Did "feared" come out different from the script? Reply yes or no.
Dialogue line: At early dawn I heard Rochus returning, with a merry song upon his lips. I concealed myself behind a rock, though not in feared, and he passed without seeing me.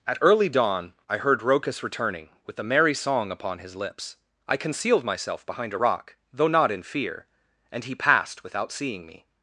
yes